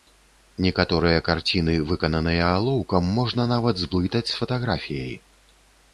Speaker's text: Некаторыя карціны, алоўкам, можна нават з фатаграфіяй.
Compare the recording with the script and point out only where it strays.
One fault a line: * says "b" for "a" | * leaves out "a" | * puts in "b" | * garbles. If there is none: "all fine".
* puts in "выкананыя"
* puts in "зблытаць"